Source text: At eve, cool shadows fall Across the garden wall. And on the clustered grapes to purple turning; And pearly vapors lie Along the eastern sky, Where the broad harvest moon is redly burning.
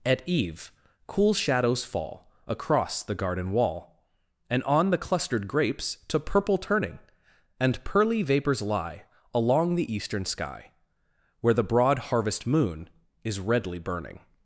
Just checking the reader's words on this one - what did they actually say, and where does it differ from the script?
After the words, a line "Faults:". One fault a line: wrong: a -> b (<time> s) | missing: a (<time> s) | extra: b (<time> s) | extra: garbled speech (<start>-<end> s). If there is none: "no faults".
At eve, cool shadows fall Across the garden wall. And on the clustered grapes to purple turning; And pearly vapors lie Along the eastern sky, Where the broad harvest moon is redly burning.
Faults:
no faults